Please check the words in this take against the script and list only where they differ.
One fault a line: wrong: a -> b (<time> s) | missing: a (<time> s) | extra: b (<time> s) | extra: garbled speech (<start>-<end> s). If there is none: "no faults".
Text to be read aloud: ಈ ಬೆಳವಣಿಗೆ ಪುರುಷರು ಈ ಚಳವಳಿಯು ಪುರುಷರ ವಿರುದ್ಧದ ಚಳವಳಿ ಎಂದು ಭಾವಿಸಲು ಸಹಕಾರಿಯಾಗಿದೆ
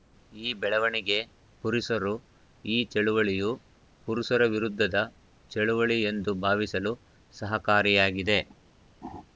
no faults